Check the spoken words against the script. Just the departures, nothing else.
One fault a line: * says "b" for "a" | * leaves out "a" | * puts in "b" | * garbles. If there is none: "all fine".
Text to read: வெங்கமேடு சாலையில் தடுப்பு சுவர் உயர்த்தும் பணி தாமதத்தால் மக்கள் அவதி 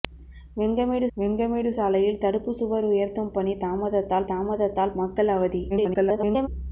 * puts in "வெங்கமேடு"
* puts in "தாமதத்தால்"
* garbles